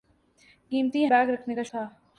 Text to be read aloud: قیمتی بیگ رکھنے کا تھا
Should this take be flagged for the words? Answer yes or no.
no